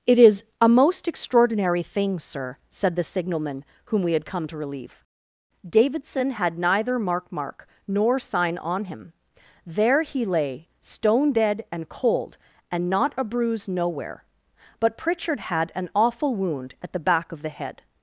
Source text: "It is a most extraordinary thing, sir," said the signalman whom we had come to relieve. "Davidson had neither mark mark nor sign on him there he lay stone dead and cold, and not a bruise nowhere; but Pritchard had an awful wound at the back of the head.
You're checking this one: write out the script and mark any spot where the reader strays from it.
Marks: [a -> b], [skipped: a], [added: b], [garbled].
"It is a most extraordinary thing, sir," said the signalman whom we had come to relieve. "Davidson had neither mark mark nor sign on him there he lay stone dead and cold, and not a bruise nowhere; but Pritchard had an awful wound at the back of the head.